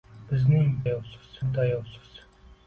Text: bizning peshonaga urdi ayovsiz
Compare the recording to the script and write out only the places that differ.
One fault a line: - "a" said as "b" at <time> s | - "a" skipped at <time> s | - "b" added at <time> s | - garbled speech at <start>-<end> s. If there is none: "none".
- "peshonaga" said as "ayovsiz" at 0.8 s